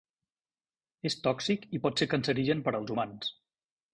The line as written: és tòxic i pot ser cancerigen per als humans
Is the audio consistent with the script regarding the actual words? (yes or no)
yes